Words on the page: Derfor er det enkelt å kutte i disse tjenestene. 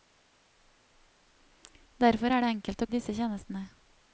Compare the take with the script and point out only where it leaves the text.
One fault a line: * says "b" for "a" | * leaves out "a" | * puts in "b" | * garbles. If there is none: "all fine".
* leaves out "kutte"